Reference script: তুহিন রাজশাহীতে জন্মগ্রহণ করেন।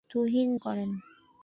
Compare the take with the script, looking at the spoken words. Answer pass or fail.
fail